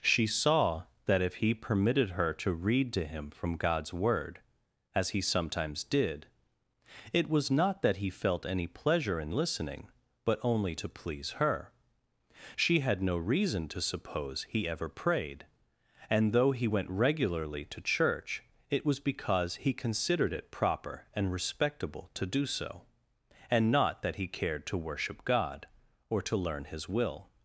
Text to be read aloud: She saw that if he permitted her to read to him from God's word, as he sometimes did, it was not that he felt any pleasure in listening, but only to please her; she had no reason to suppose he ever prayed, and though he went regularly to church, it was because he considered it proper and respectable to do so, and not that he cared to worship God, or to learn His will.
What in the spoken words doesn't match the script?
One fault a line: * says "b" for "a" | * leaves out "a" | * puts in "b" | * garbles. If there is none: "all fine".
all fine